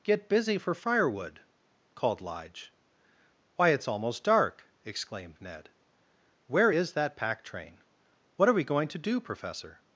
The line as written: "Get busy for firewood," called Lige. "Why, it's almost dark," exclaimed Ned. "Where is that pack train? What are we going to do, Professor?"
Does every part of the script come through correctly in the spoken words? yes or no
yes